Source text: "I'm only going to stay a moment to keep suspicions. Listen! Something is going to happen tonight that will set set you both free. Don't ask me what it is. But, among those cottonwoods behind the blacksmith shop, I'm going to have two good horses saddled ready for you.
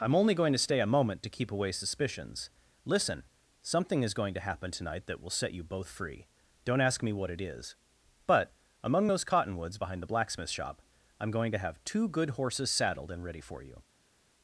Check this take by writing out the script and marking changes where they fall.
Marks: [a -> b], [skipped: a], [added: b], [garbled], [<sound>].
"I'm only going to stay a moment to keep [added: away] suspicions. Listen! Something is going to happen tonight that will set [skipped: set] you both free. Don't ask me what it is. But, among those cottonwoods behind the blacksmith shop, I'm going to have two good horses saddled [added: and] ready for you.